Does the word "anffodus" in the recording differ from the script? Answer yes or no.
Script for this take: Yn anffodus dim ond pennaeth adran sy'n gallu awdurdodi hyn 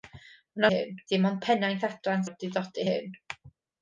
yes